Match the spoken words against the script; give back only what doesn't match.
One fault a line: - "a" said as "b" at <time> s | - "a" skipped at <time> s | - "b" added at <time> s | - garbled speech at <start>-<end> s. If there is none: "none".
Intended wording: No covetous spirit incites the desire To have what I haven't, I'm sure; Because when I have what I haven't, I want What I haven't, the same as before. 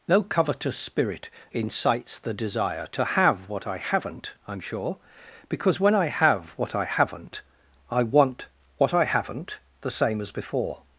none